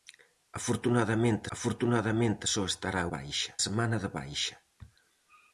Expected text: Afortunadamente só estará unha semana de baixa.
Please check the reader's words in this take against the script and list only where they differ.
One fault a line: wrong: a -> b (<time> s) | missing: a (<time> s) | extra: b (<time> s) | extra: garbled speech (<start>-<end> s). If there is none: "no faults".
extra: afortunadamente (1.6 s)
wrong: unha -> baixa (3.1 s)